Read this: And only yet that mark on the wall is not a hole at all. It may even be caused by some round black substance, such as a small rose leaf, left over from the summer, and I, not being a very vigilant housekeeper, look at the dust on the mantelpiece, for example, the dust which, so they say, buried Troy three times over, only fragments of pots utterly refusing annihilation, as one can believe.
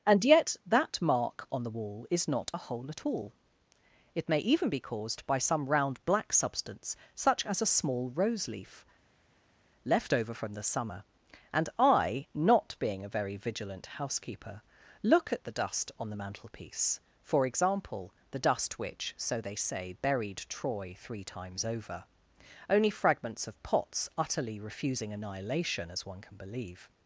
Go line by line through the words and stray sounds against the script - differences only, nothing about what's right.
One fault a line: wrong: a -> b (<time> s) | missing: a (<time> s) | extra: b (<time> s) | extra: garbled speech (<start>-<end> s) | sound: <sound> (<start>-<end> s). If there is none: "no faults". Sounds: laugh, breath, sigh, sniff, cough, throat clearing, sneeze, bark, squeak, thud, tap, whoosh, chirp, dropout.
missing: only (0.2 s)